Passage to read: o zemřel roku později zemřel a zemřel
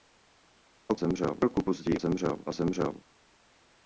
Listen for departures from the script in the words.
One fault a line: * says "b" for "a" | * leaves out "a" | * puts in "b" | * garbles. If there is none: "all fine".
all fine